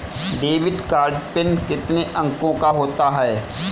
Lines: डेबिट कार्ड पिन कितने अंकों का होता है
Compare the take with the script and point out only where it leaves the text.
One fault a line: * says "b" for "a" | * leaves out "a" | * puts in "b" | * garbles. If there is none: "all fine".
all fine